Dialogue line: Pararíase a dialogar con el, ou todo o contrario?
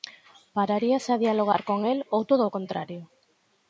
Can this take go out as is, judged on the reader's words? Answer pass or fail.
pass